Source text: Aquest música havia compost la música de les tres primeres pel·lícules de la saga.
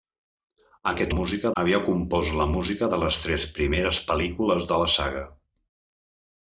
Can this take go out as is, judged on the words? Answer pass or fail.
pass